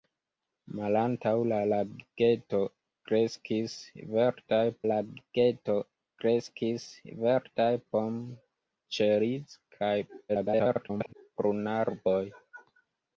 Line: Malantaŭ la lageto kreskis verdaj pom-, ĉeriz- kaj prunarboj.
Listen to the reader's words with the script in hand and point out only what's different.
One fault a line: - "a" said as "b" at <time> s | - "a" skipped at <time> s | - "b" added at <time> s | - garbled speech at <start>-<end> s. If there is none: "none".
- "lageto kreskis verdaj" added at 4.9 s
- garbled speech at 10.3-11.1 s